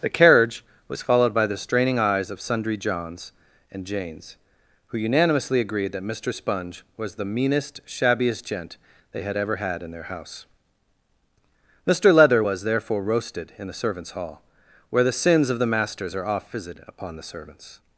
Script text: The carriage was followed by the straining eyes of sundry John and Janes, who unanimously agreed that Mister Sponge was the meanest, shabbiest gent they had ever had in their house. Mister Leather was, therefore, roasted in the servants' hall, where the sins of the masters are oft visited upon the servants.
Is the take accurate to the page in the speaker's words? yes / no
no